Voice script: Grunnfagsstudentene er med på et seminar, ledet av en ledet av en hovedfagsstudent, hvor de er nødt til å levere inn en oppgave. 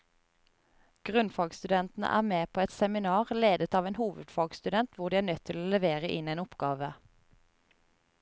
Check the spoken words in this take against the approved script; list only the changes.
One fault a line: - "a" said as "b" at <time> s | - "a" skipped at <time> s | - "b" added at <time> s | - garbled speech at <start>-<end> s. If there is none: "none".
- "ledet av en" skipped at 4.0 s